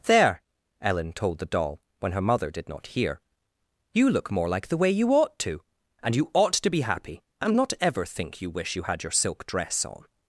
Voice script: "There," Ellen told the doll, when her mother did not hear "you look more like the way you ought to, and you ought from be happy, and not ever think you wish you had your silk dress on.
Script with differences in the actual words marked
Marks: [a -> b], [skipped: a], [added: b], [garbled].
"There," Ellen told the doll, when her mother did not hear "you look more like the way you ought to, and you ought [from -> to] be happy, and not ever think you wish you had your silk dress on.